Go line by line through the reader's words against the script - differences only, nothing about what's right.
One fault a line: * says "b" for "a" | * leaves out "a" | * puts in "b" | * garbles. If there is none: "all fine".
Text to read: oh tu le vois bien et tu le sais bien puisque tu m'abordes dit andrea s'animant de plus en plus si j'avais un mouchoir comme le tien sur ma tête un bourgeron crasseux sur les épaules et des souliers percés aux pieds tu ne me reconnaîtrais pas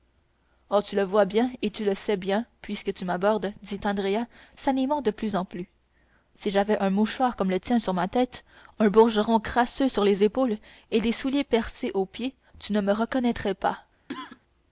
all fine